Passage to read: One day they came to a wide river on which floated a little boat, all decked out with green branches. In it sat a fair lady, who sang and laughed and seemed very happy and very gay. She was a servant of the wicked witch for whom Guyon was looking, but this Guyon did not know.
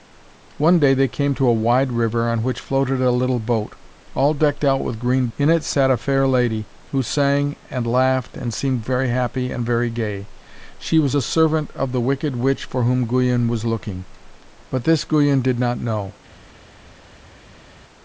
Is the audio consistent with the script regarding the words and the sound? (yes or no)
no